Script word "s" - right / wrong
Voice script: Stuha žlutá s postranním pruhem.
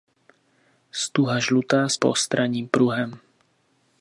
right